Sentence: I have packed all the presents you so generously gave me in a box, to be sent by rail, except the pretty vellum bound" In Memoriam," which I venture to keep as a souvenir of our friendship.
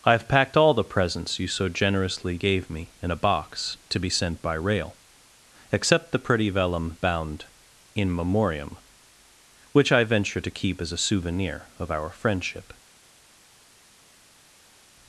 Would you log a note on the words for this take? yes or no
no